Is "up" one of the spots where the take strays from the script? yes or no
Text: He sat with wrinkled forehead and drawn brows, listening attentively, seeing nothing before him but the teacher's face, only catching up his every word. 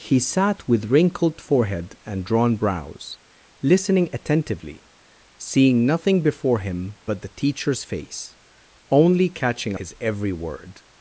yes